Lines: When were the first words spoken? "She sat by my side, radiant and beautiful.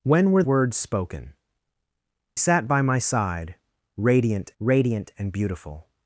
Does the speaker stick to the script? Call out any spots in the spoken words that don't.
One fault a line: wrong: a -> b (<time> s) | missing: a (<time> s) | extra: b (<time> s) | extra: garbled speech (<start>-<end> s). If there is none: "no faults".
missing: the first (0.4 s)
missing: She (1.3 s)
extra: radiant (4.6 s)